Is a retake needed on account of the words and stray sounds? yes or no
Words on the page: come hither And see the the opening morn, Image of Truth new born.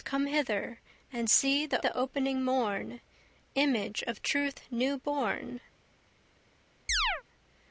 yes